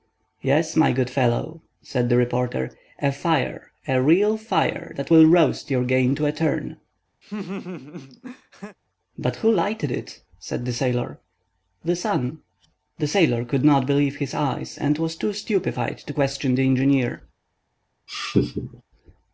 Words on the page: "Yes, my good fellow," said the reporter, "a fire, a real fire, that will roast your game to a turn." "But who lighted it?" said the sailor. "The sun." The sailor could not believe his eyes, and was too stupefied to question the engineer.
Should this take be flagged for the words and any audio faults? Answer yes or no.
yes